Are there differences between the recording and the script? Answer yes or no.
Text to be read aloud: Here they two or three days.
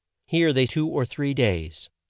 no